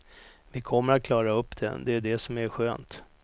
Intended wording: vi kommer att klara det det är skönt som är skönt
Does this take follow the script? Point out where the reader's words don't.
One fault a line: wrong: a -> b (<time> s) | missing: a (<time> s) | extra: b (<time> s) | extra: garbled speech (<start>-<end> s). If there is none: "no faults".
extra: upp (1.3 s)
wrong: skönt -> det (2.0 s)